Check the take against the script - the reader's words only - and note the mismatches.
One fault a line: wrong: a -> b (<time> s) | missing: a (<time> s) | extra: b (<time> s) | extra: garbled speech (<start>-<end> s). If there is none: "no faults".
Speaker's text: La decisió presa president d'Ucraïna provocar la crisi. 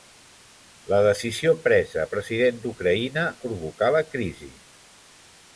no faults